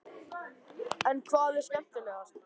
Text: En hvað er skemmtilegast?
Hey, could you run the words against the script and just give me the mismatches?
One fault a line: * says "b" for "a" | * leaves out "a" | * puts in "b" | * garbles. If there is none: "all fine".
all fine